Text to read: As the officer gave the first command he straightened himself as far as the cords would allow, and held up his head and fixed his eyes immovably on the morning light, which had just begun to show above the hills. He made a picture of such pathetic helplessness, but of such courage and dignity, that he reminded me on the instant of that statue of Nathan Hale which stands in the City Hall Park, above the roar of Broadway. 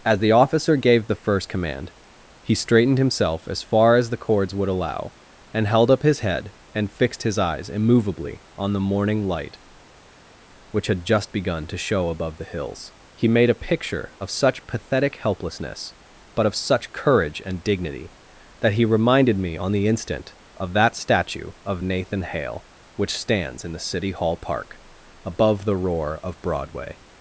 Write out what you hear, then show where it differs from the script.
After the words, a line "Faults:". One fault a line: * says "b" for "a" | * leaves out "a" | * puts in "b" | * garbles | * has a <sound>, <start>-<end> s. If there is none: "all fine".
As the officer gave the first command he straightened himself as far as the cords would allow, and held up his head and fixed his eyes immovably on the morning light, which had just begun to show above the hills. He made a picture of such pathetic helplessness, but of such courage and dignity, that he reminded me on the instant of that statue of Nathan Hale which stands in the City Hall Park, above the roar of Broadway.
Faults:
all fine